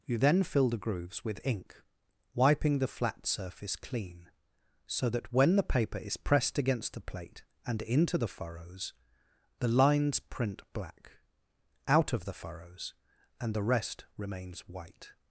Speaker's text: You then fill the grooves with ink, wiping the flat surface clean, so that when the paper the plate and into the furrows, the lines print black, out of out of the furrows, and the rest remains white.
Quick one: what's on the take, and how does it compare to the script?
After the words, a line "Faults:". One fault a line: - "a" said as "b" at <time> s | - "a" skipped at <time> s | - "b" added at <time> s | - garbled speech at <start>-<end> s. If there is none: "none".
You then fill the grooves with ink, wiping the flat surface clean, so that when the paper is pressed against the plate and into the furrows, the lines print black, out of the furrows, and the rest remains white.
Faults:
- "is pressed against" added at 6.0 s
- "out of" skipped at 12.2 s